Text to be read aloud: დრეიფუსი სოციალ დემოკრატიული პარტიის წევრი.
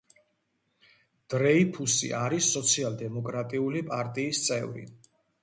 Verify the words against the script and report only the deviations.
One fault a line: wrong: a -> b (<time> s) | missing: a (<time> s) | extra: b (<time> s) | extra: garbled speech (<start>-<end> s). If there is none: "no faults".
extra: არის (2.2 s)